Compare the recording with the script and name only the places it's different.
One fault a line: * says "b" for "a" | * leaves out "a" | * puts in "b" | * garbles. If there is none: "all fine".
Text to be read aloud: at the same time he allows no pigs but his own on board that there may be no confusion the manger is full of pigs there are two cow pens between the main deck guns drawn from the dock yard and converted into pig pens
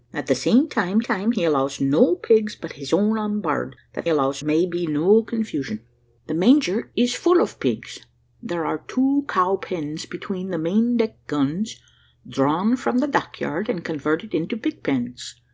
* puts in "time"
* says "allows" for "there"